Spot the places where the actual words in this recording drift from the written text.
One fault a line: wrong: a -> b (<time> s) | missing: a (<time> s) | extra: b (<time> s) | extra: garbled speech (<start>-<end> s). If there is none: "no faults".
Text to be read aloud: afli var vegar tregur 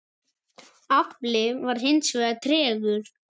extra: hins (1.9 s)